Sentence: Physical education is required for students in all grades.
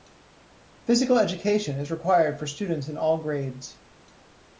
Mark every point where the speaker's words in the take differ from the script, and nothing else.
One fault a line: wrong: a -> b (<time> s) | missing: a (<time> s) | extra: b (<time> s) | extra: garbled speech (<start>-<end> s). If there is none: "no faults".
no faults